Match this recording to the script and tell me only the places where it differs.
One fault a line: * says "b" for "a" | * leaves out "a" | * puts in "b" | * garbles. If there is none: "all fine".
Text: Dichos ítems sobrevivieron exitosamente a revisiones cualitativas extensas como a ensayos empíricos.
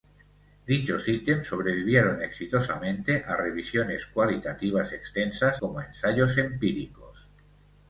all fine